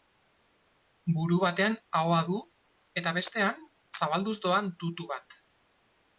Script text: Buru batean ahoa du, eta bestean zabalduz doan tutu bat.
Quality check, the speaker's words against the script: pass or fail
pass